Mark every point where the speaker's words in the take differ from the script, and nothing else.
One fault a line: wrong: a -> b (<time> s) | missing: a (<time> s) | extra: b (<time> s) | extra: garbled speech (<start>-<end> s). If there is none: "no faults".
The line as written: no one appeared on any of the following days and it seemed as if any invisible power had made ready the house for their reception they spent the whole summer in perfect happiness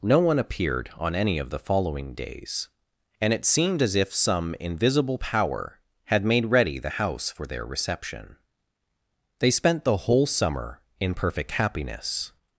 wrong: any -> some (4.1 s)